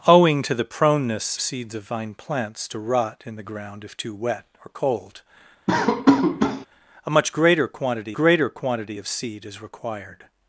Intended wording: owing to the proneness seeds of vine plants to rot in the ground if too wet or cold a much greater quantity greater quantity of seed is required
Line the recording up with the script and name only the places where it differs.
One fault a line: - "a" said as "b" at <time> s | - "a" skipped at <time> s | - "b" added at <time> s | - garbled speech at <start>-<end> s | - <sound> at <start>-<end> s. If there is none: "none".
- laugh at 5.7-6.7 s